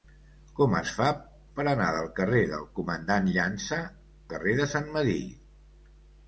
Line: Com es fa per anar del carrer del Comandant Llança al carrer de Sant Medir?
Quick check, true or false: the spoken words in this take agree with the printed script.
false